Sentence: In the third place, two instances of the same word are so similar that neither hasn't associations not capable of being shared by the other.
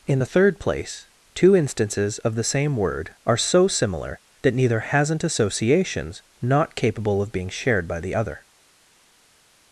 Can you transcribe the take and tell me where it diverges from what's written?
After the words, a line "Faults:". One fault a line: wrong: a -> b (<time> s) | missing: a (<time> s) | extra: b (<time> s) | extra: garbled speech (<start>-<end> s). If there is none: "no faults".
In the third place, two instances of the same word are so similar that neither hasn't associations not capable of being shared by the other.
Faults:
no faults